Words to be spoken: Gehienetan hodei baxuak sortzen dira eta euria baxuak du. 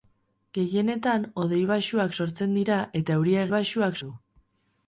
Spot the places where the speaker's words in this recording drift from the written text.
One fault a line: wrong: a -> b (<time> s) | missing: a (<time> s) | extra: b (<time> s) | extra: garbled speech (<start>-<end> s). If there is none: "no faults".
no faults